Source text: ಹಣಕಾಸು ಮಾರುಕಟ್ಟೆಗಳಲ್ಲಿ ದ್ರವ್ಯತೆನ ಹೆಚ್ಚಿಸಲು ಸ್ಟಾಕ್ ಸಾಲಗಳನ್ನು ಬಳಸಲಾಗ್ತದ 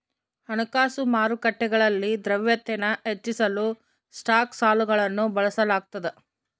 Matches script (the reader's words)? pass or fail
pass